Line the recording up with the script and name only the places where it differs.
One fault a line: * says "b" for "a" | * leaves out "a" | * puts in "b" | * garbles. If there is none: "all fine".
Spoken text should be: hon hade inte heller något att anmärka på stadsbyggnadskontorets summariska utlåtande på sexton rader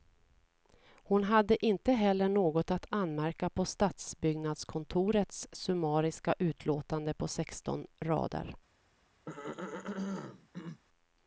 all fine